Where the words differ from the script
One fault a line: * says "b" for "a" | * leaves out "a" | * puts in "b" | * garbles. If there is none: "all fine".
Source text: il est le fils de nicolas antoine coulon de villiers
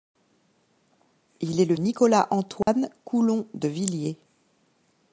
* leaves out "fils de"